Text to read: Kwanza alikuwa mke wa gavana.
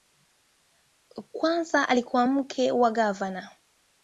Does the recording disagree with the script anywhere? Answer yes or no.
no